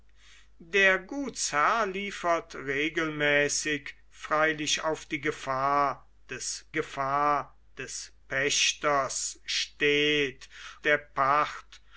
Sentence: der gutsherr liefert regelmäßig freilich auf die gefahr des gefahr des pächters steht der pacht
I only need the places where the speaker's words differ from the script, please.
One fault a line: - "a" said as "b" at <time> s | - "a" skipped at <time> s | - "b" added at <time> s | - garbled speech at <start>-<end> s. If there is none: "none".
none